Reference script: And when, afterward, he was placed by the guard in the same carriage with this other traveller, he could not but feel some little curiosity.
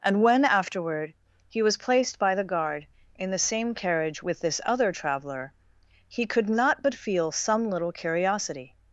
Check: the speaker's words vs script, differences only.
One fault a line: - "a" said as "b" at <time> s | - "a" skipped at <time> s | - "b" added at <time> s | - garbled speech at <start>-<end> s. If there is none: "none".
none